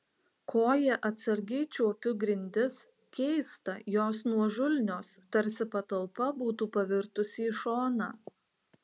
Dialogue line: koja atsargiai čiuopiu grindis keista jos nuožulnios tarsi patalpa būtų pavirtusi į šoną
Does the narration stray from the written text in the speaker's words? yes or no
no